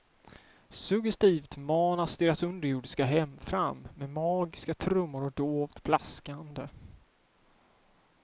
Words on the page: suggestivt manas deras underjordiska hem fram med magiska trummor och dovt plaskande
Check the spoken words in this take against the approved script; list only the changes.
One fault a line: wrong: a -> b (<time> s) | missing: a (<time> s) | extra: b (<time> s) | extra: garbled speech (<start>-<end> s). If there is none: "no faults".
no faults